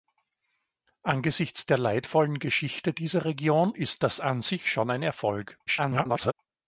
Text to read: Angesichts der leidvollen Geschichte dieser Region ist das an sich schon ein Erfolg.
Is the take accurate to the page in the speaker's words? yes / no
no